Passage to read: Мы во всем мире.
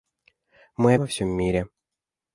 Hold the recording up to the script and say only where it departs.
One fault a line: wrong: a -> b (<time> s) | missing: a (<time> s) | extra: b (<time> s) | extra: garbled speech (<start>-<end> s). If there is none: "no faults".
no faults